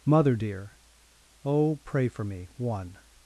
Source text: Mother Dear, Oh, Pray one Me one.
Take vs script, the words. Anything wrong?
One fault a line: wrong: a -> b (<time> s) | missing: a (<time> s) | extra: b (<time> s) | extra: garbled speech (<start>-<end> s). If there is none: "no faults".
wrong: one -> for (2.1 s)